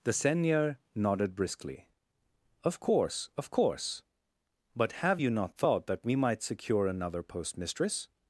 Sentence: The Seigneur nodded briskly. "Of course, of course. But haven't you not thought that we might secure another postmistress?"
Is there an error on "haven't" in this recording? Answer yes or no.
yes